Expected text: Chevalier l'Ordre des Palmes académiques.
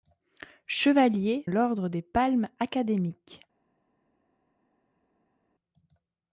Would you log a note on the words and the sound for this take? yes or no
no